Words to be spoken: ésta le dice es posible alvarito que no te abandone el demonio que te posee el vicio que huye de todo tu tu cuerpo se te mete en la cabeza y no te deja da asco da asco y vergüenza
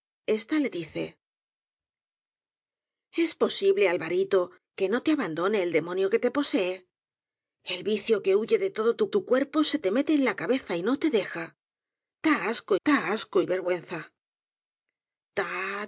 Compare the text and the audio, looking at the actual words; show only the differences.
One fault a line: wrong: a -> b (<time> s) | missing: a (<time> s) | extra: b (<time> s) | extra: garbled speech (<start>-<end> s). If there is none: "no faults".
no faults